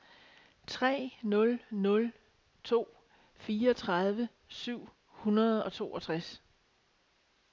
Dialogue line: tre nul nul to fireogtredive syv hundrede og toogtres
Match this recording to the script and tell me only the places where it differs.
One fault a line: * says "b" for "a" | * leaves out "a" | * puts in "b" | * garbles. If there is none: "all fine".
all fine